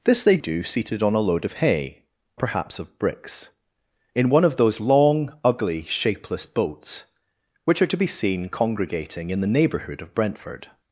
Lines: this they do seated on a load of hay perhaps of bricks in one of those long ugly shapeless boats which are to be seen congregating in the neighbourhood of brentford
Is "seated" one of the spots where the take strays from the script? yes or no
no